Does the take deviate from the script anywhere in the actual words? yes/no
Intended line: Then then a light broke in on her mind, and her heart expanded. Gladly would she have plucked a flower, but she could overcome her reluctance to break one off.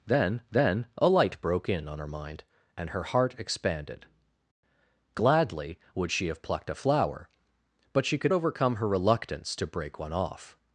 no